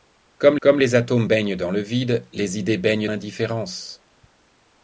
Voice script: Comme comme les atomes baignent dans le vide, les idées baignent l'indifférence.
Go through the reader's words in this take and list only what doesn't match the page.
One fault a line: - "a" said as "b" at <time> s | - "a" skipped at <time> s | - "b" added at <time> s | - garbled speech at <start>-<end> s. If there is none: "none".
none